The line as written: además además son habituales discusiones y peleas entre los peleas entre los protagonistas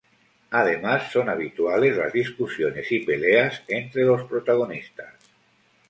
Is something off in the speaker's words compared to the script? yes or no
yes